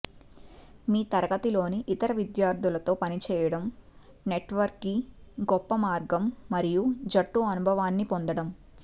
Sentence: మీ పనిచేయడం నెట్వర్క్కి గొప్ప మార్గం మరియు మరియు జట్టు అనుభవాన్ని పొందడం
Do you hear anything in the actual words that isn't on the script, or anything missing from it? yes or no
yes